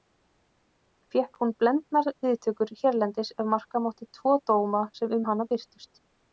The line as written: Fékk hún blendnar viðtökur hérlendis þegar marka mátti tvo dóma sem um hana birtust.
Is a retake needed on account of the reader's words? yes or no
yes